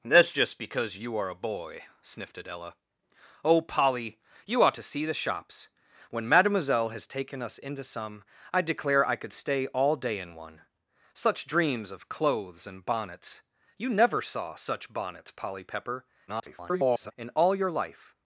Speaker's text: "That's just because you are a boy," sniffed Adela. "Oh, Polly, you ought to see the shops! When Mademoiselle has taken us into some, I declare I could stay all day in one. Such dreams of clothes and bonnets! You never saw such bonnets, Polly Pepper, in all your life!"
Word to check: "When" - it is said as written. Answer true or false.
true